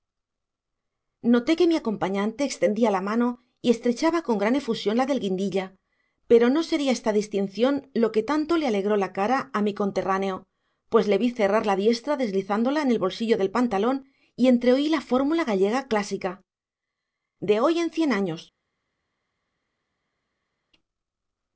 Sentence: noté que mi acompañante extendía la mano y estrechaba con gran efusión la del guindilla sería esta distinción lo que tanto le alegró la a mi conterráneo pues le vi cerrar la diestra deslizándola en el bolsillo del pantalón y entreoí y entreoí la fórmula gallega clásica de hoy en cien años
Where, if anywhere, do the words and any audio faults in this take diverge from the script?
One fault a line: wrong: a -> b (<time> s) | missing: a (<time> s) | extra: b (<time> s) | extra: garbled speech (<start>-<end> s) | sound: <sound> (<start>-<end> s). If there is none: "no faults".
extra: pero no (6.3 s)
extra: cara (9.2 s)
missing: y entreoí (14.9 s)